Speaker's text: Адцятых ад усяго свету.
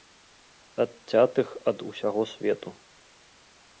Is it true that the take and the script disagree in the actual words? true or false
false